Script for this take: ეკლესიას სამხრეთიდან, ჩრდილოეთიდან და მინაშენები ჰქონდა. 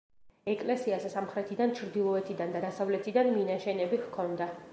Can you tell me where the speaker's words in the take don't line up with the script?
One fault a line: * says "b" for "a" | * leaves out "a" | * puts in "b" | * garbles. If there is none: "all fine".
* puts in "დასავლეთიდან"